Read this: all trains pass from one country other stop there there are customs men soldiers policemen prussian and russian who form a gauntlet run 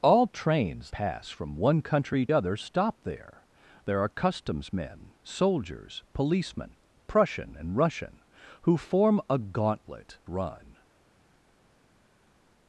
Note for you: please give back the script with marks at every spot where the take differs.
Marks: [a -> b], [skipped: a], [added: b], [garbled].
all trains pass from one country other stop there there are customs men soldiers policemen prussian and russian who form a gauntlet run